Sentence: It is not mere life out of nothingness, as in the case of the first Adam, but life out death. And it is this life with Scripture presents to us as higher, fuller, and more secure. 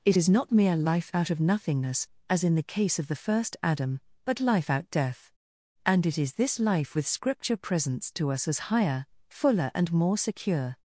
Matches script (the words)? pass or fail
pass